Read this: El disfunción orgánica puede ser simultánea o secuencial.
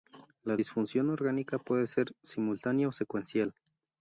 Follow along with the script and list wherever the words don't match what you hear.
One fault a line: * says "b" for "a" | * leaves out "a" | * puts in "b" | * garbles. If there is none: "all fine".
* says "La" for "El"